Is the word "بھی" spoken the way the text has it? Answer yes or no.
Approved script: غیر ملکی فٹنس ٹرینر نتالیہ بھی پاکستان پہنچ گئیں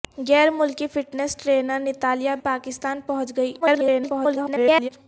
no